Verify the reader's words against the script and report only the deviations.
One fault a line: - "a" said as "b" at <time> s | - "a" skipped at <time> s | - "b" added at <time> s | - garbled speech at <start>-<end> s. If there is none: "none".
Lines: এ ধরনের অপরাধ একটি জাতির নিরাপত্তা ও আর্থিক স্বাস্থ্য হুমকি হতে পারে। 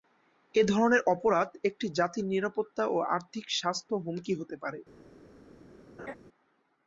none